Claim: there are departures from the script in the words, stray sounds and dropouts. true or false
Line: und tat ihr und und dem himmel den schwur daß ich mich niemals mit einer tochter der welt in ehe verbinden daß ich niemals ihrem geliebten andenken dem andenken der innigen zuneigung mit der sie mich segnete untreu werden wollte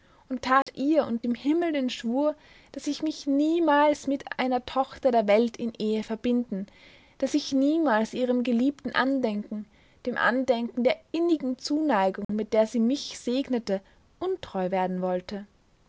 true